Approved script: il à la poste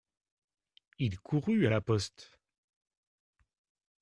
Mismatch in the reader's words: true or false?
true